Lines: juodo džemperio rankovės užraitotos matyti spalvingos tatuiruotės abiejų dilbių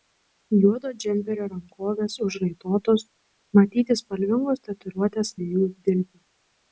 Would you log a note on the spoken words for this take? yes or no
no